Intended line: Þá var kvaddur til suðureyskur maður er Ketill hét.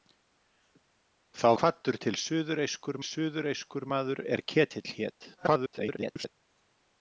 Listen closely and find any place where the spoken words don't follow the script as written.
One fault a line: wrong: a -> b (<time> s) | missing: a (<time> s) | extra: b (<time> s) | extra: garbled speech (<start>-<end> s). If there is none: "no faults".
missing: var (1.5 s)
extra: suðureyskur (3.1 s)
extra: garbled speech (5.4-6.3 s)